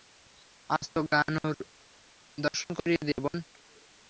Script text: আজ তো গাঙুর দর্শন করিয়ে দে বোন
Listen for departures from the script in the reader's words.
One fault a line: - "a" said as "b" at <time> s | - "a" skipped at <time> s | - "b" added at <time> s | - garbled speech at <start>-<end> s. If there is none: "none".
none